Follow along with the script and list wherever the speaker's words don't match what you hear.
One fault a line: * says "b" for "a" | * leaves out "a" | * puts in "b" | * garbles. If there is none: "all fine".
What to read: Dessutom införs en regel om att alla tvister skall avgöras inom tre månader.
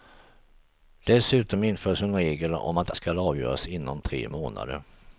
* leaves out "alla tvister"